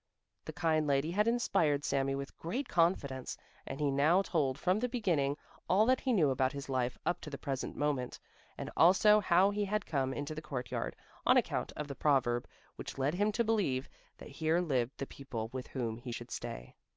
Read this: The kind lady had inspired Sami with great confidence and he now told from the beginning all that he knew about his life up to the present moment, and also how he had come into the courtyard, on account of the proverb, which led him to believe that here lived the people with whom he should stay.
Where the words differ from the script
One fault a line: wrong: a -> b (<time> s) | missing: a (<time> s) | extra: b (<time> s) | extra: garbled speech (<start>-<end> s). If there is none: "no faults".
no faults